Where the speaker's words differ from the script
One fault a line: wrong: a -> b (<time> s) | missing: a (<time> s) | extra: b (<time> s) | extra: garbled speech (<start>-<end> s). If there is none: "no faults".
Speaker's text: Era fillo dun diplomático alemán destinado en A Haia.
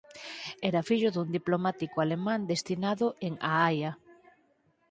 no faults